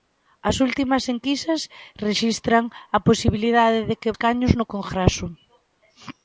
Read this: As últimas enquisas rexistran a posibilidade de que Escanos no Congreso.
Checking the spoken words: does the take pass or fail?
pass